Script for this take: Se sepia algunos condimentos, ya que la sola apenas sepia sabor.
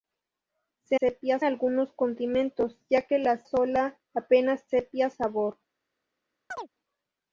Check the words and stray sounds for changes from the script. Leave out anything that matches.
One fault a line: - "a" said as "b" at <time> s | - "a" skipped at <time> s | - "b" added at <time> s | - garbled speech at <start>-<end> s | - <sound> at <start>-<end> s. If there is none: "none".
- chirp at 6.5-6.7 s